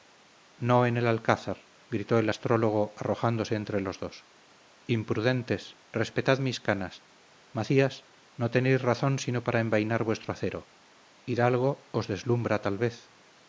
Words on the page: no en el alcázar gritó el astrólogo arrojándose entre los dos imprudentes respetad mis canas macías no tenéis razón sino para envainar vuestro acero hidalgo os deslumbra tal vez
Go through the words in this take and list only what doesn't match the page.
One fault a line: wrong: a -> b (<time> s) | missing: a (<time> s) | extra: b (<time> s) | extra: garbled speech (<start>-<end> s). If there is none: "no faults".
no faults